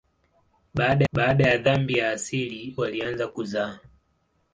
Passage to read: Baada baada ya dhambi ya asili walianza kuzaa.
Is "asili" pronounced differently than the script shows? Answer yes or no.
no